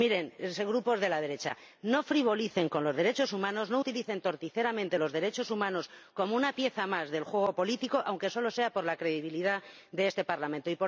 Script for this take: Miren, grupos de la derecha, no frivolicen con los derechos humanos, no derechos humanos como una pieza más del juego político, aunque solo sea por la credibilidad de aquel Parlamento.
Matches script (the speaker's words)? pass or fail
fail